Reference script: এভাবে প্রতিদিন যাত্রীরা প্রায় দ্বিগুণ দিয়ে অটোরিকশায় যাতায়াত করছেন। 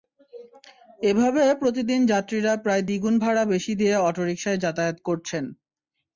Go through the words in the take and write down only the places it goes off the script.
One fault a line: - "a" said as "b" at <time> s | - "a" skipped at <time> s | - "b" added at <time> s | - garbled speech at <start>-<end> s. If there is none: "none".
- "ভাড়া বেশি" added at 3.2 s